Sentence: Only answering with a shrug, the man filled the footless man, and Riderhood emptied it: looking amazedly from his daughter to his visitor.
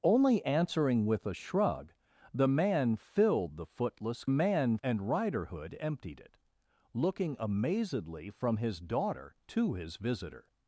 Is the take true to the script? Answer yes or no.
yes